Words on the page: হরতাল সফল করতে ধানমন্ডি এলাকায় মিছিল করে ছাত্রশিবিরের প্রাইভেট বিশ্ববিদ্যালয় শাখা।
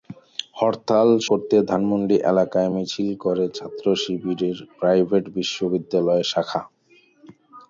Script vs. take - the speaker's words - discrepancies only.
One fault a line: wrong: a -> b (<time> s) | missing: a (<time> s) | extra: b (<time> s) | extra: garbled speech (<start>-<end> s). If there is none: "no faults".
missing: সফল (1.1 s)